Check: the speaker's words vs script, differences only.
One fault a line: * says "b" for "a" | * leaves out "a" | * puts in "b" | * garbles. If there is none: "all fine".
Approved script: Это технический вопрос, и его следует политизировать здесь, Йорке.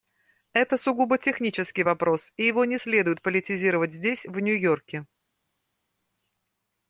* puts in "сугубо"
* puts in "не"
* puts in "в Нью"